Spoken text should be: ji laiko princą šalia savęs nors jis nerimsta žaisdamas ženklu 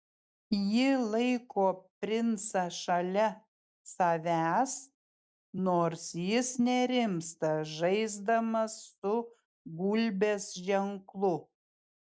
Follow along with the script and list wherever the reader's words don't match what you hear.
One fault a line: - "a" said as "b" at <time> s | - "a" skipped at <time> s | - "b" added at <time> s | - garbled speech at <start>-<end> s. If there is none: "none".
- "su gulbės" added at 9.0 s